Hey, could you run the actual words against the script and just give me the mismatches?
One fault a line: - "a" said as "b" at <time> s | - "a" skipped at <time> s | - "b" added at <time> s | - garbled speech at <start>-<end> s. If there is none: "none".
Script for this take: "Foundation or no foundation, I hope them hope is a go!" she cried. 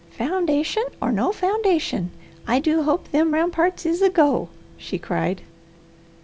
- "do" added at 2.6 s
- "hope" said as "ramparts" at 3.3 s